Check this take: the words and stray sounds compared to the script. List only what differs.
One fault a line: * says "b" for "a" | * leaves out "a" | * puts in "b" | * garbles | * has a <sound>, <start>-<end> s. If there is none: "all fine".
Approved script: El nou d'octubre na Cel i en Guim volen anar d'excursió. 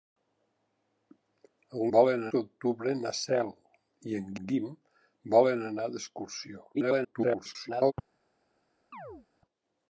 * says "volen" for "nou"
* puts in "en"
* garbles
* has a chirp, 8.9-9.3 s